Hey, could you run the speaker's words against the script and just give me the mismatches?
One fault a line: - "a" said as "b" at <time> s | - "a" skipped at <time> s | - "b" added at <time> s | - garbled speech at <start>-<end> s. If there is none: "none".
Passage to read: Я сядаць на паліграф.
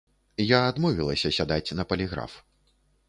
- "адмовілася" added at 0.7 s